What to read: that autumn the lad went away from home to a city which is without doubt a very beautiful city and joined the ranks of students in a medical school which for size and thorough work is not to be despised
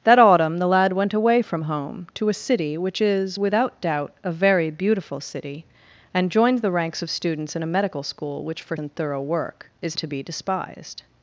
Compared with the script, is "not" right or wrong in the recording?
wrong